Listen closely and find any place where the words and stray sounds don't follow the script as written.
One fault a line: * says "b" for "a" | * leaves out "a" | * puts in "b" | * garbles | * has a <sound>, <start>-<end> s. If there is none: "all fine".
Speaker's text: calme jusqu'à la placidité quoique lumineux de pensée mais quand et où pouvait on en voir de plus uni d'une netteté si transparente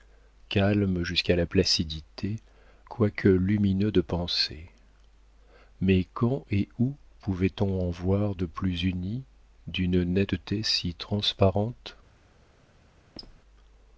* has a squeak, 13.2-13.4 s